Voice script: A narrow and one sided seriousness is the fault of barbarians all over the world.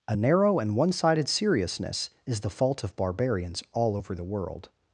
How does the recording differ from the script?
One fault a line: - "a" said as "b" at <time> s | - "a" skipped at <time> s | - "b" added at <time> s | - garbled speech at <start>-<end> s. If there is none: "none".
none